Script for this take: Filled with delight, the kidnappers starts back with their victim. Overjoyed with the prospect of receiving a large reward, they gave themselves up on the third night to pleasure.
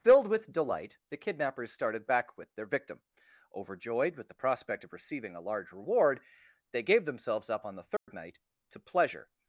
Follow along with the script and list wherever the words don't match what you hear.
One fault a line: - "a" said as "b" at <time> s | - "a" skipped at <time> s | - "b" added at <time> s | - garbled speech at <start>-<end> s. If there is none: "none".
- "starts" said as "started" at 1.7 s